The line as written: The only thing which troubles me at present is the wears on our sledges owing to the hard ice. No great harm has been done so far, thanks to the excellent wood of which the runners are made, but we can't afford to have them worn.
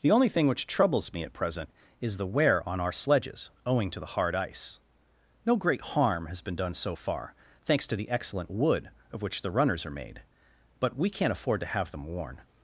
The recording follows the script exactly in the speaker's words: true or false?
false